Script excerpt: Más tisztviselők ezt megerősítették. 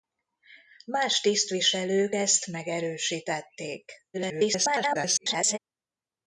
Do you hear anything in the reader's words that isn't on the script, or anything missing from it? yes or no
yes